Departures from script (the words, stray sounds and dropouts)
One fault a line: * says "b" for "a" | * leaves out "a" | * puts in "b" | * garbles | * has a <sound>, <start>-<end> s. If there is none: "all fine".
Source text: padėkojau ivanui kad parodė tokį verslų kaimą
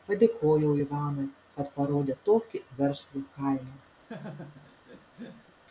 * has a laugh, 4.0-5.5 s